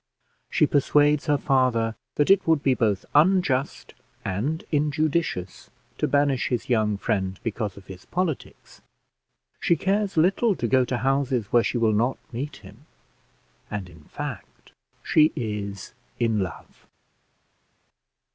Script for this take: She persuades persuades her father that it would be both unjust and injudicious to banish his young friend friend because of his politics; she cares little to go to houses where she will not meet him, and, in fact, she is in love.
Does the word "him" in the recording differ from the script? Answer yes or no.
no